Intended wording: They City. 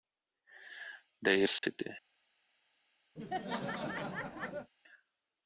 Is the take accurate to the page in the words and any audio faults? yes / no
no